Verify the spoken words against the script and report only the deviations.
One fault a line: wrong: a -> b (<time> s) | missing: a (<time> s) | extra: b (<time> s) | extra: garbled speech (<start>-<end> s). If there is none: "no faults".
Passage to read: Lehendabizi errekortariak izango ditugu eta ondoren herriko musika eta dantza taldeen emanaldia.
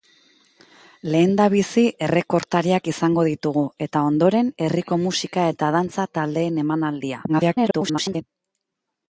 extra: garbled speech (7.3-8.2 s)